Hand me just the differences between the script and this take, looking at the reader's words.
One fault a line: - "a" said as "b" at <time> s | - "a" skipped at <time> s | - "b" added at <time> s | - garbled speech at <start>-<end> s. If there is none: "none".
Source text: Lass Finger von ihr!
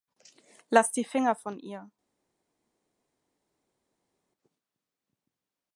- "die" added at 0.9 s